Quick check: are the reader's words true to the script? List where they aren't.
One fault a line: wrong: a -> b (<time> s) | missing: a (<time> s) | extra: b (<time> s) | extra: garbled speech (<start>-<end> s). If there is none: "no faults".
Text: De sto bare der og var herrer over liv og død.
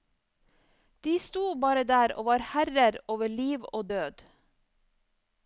no faults